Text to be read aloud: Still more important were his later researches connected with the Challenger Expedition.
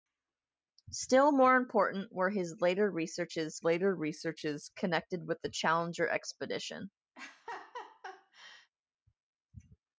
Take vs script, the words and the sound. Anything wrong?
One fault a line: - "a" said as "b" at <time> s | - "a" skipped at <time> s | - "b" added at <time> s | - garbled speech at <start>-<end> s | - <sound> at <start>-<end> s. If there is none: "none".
- "later researches" added at 3.6 s
- laugh at 7.1-8.7 s